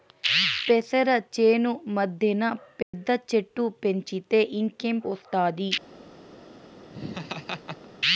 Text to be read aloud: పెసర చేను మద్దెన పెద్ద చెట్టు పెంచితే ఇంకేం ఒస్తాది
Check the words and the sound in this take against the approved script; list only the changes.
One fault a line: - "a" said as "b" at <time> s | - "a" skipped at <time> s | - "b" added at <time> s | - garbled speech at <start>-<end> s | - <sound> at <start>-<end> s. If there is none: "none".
- dropout at 2.8-2.9 s
- laugh at 6.9-7.9 s